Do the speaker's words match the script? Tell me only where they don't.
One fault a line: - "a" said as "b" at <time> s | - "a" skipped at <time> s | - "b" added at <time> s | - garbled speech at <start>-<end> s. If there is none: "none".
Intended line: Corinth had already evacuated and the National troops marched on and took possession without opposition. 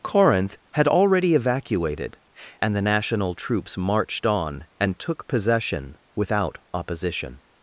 none